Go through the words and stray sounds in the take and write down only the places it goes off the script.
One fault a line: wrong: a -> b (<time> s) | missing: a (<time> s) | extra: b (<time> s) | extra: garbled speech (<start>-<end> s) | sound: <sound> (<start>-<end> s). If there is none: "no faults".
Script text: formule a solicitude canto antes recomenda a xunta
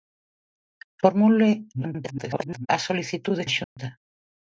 extra: garbled speech (1.7-2.7 s)
missing: canto antes recomenda (3.4 s)
sound: dropout (3.6-3.8 s)